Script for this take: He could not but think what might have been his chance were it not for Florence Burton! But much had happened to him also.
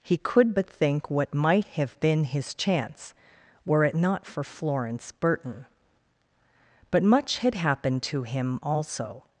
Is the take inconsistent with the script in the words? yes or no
yes